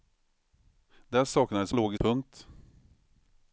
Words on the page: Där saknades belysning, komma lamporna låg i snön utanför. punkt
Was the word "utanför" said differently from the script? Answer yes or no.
yes